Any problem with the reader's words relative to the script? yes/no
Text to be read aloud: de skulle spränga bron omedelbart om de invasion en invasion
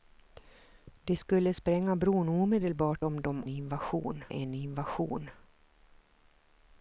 no